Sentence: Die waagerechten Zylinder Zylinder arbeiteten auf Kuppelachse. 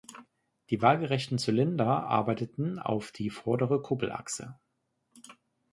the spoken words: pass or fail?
fail